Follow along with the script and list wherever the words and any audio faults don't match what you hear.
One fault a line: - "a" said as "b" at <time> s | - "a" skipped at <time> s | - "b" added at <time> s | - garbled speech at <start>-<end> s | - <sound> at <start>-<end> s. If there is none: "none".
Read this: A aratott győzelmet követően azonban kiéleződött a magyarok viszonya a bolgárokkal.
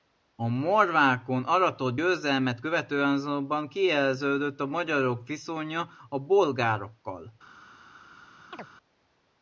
- "morvákon" added at 0.5 s
- chirp at 8.5-8.7 s